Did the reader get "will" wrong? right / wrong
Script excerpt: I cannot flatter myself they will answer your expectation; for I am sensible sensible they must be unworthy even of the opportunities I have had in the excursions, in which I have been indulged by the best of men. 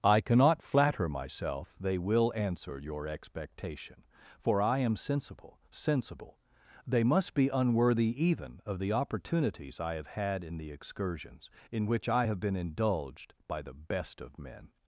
right